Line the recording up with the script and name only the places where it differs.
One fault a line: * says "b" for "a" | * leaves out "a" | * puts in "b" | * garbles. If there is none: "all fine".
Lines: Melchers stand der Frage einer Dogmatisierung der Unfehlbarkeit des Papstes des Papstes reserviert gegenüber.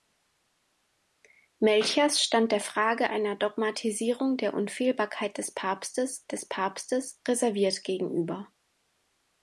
all fine